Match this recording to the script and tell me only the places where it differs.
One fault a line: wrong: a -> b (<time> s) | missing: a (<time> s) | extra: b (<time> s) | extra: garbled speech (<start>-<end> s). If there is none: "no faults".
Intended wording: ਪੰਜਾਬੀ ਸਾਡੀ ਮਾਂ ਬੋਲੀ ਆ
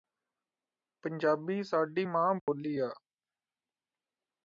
no faults